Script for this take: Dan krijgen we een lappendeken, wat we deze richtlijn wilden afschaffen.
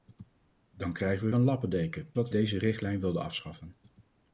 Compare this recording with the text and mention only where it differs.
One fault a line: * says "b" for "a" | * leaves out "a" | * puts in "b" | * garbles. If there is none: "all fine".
all fine